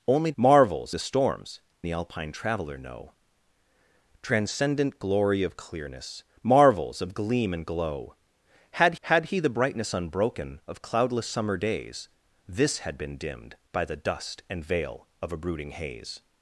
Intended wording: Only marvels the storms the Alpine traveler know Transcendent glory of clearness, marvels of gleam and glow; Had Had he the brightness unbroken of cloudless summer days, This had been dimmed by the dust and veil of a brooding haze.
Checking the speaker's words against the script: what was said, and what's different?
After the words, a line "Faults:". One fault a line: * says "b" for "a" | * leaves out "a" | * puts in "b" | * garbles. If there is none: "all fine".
Only marvels the storms the Alpine traveler know Transcendent glory of clearness, marvels of gleam and glow; Had Had he the brightness unbroken of cloudless summer days, This had been dimmed by the dust and veil of a brooding haze.
Faults:
all fine